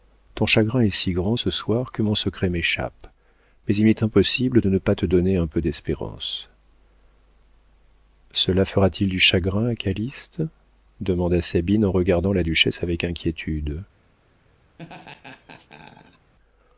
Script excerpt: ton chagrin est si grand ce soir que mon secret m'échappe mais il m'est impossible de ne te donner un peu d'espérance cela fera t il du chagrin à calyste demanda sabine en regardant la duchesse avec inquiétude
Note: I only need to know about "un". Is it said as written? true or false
true